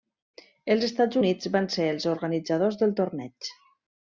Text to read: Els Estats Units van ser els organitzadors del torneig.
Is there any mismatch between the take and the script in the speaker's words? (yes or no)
no